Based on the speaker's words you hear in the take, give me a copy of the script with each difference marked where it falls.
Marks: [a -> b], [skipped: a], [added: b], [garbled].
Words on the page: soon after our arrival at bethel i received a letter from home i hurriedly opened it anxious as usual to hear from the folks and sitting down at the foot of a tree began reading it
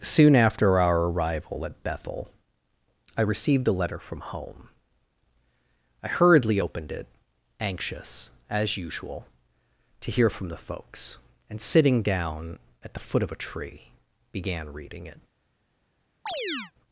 soon after our arrival at bethel i received a letter from home i hurriedly opened it anxious as usual to hear from the folks and sitting down at the foot of a tree began reading it